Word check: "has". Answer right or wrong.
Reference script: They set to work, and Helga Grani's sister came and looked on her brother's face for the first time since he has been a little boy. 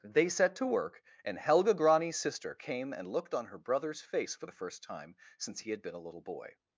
wrong